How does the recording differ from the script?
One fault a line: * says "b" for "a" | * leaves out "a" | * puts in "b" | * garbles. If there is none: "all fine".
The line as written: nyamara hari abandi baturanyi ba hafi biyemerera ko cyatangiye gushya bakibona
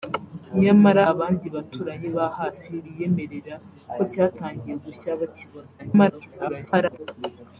* leaves out "hari"
* garbles